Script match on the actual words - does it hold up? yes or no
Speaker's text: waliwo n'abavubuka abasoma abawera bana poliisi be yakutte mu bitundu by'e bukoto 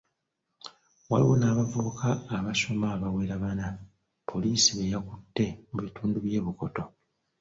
yes